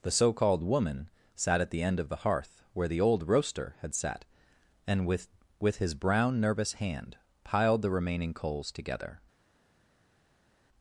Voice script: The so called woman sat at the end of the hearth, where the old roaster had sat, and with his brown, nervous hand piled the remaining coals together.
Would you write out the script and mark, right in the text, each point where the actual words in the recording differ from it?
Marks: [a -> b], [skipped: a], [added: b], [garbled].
The so called woman sat at the end of the hearth, where the old roaster had sat, and with [added: with] his brown, nervous hand piled the remaining coals together.